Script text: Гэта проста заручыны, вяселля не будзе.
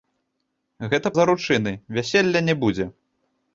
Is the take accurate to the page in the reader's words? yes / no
no